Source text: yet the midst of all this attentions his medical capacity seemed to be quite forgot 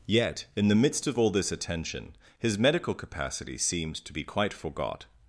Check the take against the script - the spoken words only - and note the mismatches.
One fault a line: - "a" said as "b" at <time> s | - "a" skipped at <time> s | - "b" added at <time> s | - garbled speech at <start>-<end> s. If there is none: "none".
- "in" added at 0.6 s
- "attentions" said as "attention" at 1.5 s